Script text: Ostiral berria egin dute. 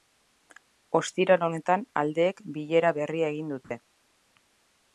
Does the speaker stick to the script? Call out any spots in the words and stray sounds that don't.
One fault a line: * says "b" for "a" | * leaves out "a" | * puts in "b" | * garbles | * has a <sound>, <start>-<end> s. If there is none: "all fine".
* puts in "honetan aldeek bilera"
* has a dropout, 3.6-3.7 s